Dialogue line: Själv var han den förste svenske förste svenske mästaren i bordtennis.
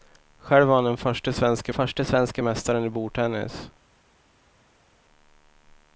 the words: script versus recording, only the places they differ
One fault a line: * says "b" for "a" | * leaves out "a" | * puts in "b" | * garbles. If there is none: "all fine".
all fine